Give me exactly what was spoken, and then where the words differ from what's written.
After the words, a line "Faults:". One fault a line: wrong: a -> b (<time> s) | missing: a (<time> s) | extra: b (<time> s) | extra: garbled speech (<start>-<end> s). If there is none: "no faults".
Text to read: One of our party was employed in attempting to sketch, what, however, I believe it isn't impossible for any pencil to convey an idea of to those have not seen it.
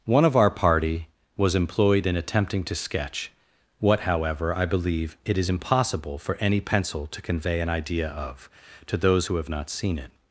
One of our party was employed in attempting to sketch, what, however, I believe it is impossible for any pencil to convey an idea of to those who have not seen it.
Faults:
wrong: isn't -> is (5.4 s)
extra: who (9.2 s)